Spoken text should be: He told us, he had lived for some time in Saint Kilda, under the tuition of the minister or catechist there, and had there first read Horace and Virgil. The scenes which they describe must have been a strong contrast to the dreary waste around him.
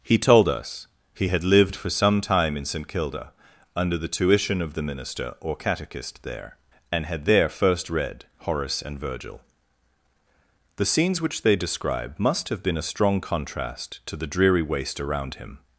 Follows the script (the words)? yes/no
yes